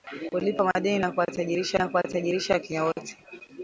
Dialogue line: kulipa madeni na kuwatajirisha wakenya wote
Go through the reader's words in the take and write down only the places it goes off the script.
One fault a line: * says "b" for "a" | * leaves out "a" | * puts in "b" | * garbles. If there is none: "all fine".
* puts in "na kuwatajirisha"